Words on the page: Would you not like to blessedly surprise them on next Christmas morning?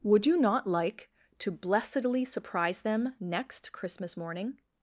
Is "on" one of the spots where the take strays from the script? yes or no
yes